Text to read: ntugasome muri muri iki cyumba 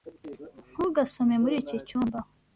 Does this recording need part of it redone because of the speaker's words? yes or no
yes